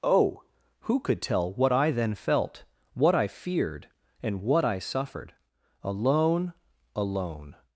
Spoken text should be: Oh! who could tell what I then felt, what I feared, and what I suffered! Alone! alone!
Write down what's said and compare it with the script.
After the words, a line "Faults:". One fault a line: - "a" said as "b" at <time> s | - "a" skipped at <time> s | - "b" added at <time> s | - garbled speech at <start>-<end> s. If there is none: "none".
Oh! who could tell what I then felt, what I feared, and what I suffered! Alone! alone!
Faults:
none